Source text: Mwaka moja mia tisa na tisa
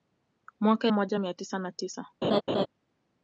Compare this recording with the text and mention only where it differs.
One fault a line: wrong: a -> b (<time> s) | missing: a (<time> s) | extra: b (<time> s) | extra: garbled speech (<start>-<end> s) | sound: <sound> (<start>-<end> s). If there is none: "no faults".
sound: laugh (2.2-2.7 s)